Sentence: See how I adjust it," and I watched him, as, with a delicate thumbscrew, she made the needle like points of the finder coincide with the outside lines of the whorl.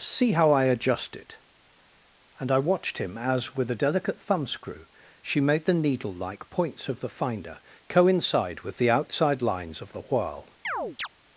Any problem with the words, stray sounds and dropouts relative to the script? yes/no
yes